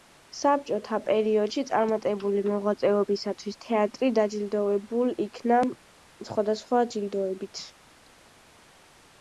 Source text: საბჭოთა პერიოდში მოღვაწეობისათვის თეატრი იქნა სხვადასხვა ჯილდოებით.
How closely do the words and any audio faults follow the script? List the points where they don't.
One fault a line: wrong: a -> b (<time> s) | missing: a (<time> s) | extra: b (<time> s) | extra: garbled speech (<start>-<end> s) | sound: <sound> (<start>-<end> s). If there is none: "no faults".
extra: წარმატებული (1.7 s)
extra: დაჯილდოვებულ (4.2 s)